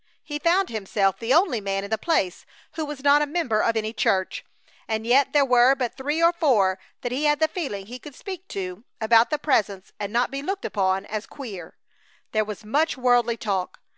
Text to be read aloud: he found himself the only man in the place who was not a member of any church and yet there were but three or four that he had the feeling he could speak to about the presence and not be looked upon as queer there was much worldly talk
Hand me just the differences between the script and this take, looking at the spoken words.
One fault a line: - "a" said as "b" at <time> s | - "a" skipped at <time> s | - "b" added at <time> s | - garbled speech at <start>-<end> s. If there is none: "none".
none